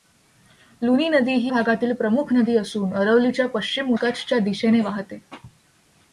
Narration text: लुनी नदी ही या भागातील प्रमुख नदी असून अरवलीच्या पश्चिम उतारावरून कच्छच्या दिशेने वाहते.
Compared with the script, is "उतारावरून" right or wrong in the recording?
wrong